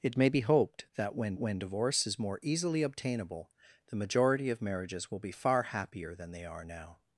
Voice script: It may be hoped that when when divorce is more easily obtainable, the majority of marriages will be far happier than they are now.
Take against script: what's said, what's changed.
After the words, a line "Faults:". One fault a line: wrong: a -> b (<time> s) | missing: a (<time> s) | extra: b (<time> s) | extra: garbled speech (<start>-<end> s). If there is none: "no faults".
It may be hoped that when when divorce is more easily obtainable, the majority of marriages will be far happier than they are now.
Faults:
no faults